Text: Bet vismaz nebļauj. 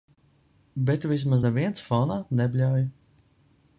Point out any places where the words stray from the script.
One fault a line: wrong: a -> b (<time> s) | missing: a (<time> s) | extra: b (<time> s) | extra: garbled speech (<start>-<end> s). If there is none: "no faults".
extra: neviens fonā (1.4 s)